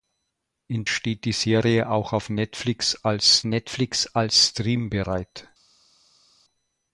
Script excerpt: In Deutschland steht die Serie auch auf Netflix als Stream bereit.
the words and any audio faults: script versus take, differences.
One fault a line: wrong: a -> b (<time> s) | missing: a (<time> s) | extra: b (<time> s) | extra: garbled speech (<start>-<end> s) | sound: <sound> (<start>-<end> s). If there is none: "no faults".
missing: Deutschland (0.9 s)
extra: Netflix als (3.5 s)